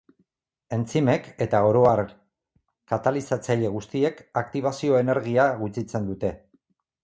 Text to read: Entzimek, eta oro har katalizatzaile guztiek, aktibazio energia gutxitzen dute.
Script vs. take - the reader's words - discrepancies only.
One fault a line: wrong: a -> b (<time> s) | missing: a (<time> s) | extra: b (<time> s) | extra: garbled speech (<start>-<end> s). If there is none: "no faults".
no faults